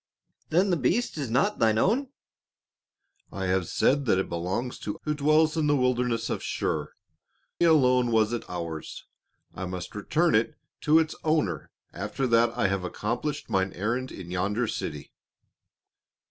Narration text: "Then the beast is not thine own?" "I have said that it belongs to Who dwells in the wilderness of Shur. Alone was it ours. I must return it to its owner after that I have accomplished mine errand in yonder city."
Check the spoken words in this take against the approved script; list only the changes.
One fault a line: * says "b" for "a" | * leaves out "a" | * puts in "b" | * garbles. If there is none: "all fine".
all fine